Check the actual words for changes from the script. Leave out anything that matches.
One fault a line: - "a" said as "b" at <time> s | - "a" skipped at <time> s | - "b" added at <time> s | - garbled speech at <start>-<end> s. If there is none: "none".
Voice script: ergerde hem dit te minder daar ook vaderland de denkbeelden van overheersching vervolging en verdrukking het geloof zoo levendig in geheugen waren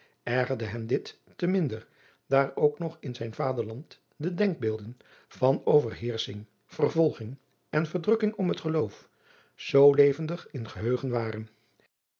- "nog in zijn" added at 2.8 s
- "om" added at 8.3 s